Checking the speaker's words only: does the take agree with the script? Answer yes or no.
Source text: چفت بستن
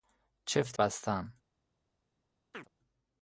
yes